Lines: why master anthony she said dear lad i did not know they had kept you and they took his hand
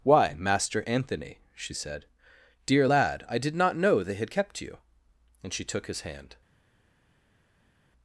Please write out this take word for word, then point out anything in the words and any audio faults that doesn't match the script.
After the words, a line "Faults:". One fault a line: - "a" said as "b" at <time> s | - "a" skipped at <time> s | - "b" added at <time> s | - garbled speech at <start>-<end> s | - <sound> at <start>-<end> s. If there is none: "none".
why master anthony she said dear lad i did not know they had kept you and she took his hand
Faults:
- "they" said as "she" at 5.5 s